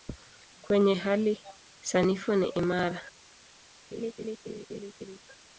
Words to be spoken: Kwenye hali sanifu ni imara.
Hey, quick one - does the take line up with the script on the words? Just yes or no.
yes